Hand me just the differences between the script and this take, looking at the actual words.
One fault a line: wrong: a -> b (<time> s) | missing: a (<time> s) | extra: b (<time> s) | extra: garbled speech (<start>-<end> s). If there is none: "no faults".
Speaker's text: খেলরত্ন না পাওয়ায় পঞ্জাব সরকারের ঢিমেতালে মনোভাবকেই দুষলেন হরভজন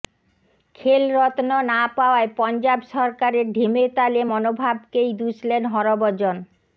no faults